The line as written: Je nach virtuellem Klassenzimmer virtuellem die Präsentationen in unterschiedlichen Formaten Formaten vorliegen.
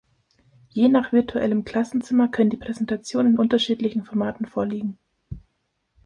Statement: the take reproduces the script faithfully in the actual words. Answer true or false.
false